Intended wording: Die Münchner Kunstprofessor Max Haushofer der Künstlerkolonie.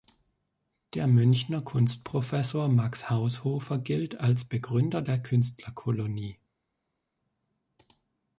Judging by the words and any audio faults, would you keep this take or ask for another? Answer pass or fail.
fail